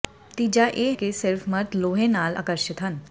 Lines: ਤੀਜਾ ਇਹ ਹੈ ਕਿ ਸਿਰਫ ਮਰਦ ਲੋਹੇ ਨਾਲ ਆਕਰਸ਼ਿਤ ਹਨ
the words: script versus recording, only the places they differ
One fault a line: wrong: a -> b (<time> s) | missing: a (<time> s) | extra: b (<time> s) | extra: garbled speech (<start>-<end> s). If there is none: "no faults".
missing: ਹੈ (0.9 s)